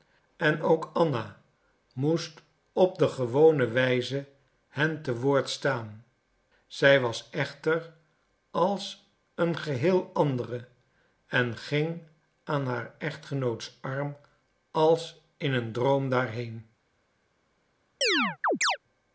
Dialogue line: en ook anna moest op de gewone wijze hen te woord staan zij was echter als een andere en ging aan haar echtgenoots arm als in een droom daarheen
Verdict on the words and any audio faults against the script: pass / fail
fail